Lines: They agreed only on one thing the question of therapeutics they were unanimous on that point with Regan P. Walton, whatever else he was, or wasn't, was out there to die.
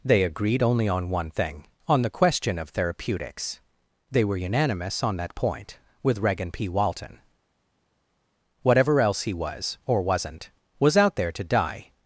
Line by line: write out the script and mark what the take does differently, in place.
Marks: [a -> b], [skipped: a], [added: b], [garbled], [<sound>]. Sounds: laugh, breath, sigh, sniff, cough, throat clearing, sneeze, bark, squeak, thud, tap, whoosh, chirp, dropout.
They agreed only on one thing [added: on] the question of therapeutics they were unanimous on that point with Regan P. Walton, whatever else he was, or wasn't, was out there to die.